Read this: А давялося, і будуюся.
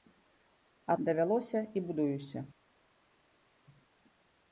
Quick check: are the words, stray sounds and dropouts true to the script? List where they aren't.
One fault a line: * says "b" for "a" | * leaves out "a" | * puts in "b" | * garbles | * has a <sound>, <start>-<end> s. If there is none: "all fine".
all fine